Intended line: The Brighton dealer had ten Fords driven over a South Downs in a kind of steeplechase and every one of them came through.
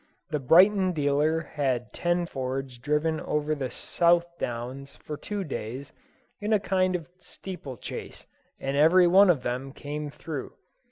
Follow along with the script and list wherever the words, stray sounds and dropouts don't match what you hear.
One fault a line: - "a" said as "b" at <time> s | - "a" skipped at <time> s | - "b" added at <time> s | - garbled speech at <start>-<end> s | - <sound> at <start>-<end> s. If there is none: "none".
- "a" said as "the" at 3.5 s
- "for two days" added at 4.9 s